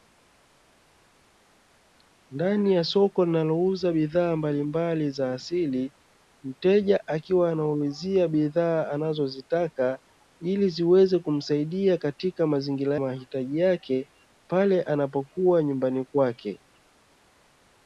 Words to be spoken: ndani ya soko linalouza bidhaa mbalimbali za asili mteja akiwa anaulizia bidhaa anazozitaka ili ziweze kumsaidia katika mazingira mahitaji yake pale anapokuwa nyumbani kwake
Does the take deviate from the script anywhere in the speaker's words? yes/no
no